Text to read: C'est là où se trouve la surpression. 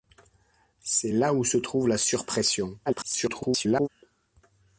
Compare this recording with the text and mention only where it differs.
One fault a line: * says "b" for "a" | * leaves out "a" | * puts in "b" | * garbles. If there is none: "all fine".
* garbles